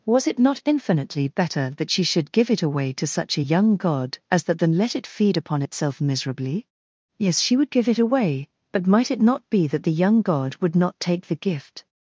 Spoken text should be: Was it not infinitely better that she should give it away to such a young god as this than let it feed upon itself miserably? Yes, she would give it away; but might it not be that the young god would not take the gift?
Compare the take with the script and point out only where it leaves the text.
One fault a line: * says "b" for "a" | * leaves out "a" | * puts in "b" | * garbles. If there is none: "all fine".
* says "that" for "this"